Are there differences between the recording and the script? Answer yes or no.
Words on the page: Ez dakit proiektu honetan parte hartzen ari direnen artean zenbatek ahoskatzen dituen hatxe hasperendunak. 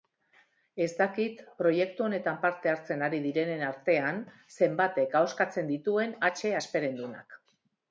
no